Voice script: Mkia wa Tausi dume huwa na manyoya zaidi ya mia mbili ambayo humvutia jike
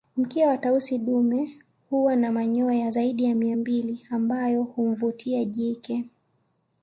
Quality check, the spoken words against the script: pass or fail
pass